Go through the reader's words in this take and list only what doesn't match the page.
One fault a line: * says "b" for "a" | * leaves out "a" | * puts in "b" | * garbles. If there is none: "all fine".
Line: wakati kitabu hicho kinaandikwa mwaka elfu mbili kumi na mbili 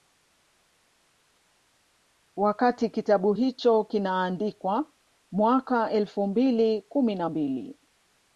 all fine